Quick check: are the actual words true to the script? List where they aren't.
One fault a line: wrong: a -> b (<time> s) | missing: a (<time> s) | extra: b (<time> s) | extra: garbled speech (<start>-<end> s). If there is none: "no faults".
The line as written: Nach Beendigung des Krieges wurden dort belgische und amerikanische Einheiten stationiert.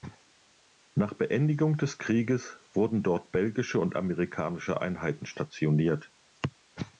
no faults